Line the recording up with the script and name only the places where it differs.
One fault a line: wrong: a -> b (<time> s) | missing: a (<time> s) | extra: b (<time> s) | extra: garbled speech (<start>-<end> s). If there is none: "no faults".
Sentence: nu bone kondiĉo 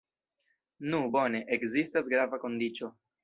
extra: ekzistas grava (1.6 s)